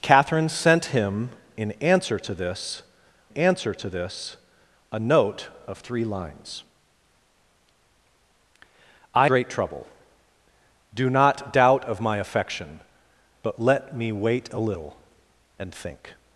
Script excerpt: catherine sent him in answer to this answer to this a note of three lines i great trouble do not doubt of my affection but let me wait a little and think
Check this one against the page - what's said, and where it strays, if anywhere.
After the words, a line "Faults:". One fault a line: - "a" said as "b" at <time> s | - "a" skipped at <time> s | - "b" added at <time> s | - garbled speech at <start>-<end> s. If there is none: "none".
catherine sent him in answer to this answer to this a note of three lines i great trouble do not doubt of my affection but let me wait a little and think
Faults:
none